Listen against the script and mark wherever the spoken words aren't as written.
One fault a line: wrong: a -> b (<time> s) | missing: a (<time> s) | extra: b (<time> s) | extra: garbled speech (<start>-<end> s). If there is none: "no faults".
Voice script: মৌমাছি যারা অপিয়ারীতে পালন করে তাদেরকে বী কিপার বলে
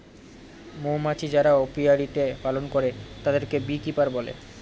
no faults